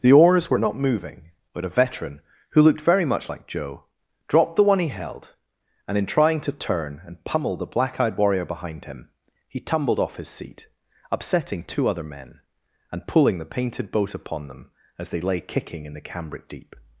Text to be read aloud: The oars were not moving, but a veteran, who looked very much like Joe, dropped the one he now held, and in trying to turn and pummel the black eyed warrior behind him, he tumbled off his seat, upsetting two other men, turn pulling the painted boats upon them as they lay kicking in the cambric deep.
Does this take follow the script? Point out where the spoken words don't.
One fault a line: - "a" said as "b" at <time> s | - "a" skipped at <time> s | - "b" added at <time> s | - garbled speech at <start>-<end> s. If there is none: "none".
- "now" skipped at 4.9 s
- "turn" said as "and" at 12.9 s
- "boats" said as "boat" at 13.9 s